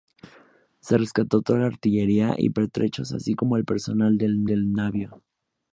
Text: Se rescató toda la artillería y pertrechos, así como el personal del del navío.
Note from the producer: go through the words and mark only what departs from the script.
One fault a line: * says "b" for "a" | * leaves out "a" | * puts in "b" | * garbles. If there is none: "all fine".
all fine